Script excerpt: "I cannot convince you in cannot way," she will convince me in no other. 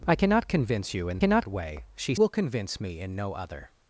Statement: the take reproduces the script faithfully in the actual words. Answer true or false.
true